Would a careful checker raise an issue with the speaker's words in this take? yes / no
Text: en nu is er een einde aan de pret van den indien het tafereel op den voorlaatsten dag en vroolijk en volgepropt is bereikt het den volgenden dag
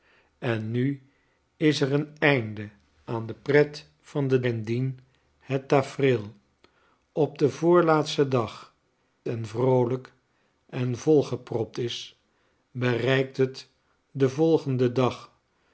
no